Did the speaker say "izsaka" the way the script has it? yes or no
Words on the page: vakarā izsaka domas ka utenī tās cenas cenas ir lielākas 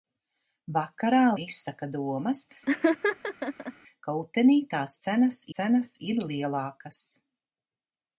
yes